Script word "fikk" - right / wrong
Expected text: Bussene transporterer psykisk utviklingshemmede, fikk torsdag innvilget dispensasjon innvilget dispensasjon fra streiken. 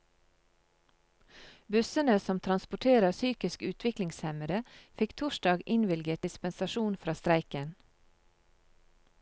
right